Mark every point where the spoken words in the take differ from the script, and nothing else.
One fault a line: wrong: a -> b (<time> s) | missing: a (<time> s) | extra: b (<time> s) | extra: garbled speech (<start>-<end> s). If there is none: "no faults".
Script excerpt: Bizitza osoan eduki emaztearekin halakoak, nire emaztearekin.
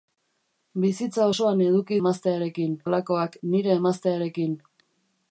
no faults